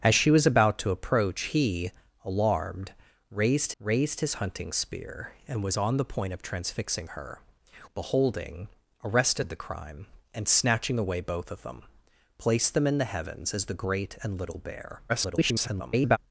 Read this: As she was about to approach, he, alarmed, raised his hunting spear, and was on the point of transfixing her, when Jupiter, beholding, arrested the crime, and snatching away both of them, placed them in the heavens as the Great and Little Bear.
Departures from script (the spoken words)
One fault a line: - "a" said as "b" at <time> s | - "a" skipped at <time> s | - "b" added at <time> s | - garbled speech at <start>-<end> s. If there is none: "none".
- "raised" added at 3.8 s
- "when Jupiter" skipped at 7.4 s
- garbled speech at 15.1-16.2 s